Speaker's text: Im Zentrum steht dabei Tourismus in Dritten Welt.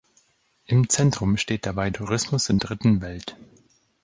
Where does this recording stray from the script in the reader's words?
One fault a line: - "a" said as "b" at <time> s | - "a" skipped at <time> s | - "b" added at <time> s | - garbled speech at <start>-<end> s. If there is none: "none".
none